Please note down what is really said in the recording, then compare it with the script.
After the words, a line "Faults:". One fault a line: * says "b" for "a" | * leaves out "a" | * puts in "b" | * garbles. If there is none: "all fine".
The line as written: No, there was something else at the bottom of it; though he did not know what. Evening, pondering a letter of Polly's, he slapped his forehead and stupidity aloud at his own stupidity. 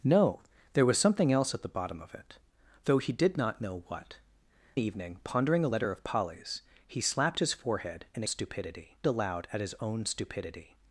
No, there was something else at the bottom of it; though he did not know what. Evening, pondering a letter of Polly's, he slapped his forehead and stupidity aloud at his own stupidity.
Faults:
all fine